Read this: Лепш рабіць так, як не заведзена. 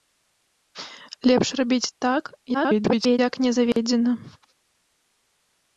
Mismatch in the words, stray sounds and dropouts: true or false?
true